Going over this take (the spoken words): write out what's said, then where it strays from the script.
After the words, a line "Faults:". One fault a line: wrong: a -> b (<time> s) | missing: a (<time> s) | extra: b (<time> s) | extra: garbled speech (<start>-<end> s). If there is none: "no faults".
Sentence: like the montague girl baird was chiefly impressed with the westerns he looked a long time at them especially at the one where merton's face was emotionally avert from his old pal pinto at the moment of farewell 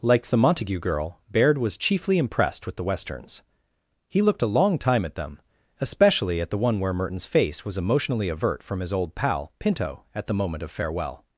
like the montague girl baird was chiefly impressed with the westerns he looked a long time at them especially at the one where merton's face was emotionally avert from his old pal pinto at the moment of farewell
Faults:
no faults